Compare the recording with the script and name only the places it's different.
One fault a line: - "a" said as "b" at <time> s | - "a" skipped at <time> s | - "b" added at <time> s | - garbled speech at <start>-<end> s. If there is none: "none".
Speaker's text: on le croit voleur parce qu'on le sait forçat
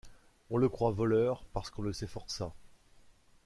none